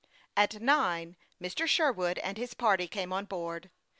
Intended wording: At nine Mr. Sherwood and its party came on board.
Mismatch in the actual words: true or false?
true